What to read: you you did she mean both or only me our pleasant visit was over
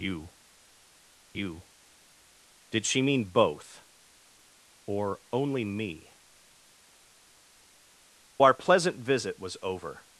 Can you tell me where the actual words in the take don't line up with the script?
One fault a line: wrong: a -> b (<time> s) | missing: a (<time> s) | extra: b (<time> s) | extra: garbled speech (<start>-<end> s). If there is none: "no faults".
no faults